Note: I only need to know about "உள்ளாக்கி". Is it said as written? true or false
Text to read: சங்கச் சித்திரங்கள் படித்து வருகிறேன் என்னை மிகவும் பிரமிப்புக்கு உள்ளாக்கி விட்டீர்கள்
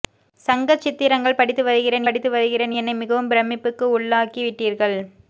true